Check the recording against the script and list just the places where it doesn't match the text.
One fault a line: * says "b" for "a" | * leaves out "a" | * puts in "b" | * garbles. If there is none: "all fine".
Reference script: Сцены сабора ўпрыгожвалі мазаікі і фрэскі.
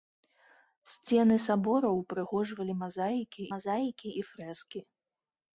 * puts in "мазаікі"